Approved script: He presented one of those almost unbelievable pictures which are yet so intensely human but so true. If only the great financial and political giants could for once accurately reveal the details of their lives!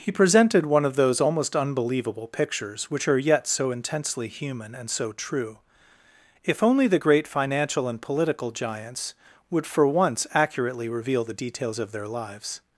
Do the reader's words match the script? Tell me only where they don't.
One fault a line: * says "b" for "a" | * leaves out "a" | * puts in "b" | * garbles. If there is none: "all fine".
* says "and" for "but"
* says "would" for "could"